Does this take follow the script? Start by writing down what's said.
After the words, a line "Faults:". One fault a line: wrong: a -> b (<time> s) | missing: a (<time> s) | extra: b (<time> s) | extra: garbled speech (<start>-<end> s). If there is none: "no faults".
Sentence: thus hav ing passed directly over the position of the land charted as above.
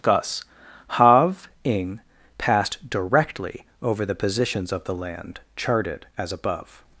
thus hav ing passed directly over the positions of the land charted as above.
Faults:
wrong: position -> positions (4.2 s)